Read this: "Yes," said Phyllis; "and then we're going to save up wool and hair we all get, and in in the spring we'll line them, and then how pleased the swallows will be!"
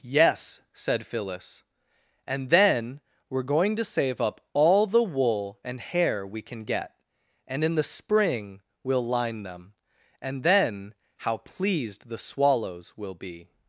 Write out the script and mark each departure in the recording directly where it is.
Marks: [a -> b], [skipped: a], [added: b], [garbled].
"Yes," said Phyllis; "and then we're going to save up [added: all the] wool and hair we [all -> can] get, and in [skipped: in] the spring we'll line them, and then how pleased the swallows will be!"